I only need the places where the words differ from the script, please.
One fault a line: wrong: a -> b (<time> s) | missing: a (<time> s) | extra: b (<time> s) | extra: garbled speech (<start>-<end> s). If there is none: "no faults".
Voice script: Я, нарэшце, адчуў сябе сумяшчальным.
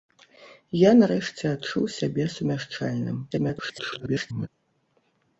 extra: garbled speech (3.3-4.5 s)